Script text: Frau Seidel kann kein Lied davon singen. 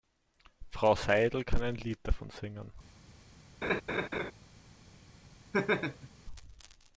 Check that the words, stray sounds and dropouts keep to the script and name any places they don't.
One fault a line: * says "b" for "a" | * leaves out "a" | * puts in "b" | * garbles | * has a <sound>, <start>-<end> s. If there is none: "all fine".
* says "ein" for "kein"
* has a laugh, 3.6-4.3 s
* has a laugh, 5.5-6.1 s